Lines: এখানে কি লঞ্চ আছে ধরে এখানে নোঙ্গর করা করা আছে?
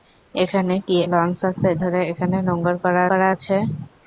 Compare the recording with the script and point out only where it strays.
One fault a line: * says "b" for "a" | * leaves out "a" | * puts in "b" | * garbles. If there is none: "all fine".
all fine